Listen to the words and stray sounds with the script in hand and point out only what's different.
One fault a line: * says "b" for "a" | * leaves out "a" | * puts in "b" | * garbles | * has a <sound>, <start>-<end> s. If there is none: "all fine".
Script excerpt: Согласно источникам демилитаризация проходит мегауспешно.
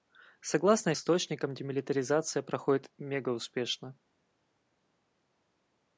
all fine